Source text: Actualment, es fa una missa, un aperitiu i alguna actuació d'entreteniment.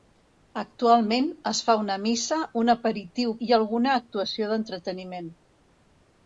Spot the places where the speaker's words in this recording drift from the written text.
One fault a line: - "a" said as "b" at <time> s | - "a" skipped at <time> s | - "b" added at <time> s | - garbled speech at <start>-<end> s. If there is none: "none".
none